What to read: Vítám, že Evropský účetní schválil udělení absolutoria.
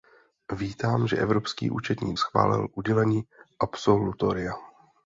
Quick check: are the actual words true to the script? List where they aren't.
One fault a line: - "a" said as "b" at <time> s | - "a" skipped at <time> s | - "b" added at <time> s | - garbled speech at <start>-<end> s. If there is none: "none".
none